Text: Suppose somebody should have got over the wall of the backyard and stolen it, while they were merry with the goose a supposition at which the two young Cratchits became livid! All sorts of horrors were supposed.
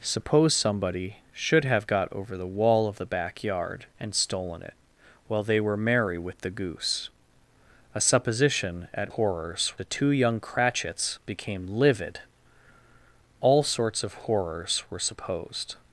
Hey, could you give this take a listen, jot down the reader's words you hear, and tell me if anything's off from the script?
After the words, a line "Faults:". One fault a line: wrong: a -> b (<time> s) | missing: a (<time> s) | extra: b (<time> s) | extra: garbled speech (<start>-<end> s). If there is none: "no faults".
Suppose somebody should have got over the wall of the backyard and stolen it, while they were merry with the goose a supposition at horrors the two young Cratchits became livid! All sorts of horrors were supposed.
Faults:
wrong: which -> horrors (9.2 s)